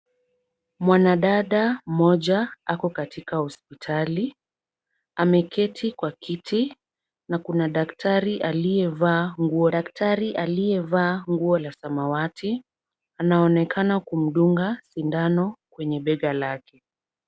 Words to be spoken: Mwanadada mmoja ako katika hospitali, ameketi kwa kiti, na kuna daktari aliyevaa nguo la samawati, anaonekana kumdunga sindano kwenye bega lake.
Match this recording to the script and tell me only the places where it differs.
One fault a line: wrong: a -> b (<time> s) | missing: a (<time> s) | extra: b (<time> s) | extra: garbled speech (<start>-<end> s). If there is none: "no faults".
extra: daktari aliyevaa nguo (9.7 s)